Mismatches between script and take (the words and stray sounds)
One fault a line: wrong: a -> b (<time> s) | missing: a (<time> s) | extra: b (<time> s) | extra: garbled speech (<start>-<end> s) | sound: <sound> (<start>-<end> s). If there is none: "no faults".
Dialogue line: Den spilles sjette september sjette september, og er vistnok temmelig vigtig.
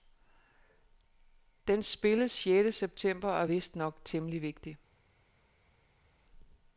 missing: sjette september (3.3 s)